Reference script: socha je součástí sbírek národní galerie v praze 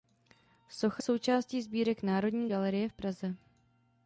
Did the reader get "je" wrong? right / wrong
wrong